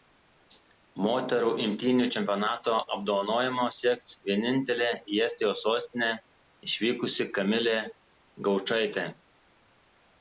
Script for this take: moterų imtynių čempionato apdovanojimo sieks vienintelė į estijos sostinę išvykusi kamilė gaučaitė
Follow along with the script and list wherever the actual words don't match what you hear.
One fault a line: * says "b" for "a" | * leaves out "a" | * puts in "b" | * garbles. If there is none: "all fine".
all fine